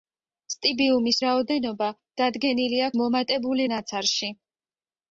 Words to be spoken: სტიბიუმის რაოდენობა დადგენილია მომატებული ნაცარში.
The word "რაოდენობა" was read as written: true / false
true